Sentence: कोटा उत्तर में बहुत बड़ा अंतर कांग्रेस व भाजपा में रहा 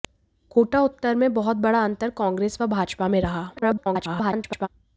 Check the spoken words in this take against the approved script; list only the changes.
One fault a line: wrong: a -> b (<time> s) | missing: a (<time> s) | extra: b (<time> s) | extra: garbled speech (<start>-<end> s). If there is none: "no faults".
extra: garbled speech (3.6-4.7 s)